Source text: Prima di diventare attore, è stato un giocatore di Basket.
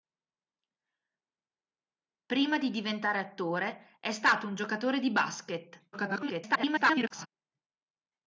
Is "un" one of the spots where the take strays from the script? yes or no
no